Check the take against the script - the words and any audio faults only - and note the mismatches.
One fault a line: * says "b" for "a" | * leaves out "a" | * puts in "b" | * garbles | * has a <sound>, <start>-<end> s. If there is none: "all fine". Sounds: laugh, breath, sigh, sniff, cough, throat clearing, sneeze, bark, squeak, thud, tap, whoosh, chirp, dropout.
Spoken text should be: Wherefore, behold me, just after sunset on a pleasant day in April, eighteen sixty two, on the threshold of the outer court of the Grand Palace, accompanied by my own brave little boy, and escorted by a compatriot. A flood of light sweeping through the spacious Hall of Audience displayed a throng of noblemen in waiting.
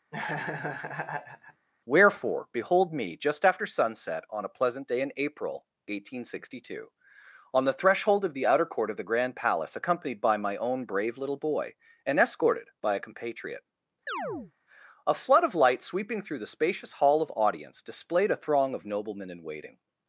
* has a laugh, 0.1-1.7 s
* has a chirp, 14.1-14.5 s